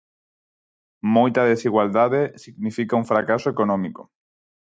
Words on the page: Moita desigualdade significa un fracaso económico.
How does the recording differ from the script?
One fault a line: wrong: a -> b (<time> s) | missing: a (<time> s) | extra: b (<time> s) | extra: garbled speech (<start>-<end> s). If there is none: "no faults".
no faults